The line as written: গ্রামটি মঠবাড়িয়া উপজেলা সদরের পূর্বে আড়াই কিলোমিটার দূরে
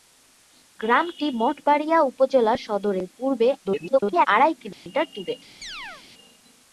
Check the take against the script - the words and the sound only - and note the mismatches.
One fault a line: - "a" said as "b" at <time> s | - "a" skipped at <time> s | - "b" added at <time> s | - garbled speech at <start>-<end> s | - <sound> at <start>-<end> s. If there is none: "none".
- garbled speech at 3.6-4.3 s
- dropout at 4.7-4.9 s
- chirp at 5.6-6.0 s